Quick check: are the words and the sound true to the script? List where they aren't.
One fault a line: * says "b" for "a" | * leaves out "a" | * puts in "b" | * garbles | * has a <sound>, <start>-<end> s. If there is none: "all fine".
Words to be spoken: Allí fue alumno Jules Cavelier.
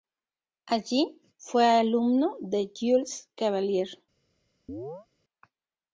* puts in "de"
* has a chirp, 4.7-5.1 s